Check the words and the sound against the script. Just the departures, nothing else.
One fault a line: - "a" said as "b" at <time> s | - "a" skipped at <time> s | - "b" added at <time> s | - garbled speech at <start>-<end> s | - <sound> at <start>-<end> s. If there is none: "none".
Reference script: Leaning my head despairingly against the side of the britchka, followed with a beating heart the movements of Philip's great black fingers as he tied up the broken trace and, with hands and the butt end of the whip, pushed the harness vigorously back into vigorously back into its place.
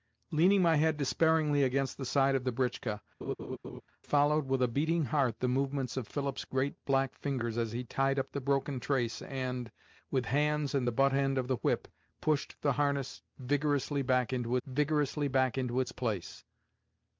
- laugh at 3.2-3.8 s